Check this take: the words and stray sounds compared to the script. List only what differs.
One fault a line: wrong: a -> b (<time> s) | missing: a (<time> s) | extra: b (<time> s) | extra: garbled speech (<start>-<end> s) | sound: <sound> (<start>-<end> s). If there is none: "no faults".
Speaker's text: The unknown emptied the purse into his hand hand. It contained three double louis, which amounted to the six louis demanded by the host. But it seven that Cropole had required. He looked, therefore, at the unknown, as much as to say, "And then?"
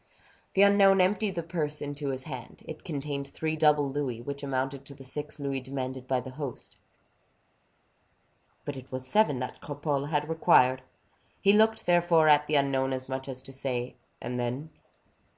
missing: hand (2.6 s)
extra: was (8.9 s)